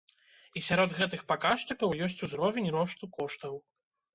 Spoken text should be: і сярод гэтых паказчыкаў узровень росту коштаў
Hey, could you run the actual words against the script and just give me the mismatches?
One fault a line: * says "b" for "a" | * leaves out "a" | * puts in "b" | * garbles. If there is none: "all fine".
* puts in "ёсць"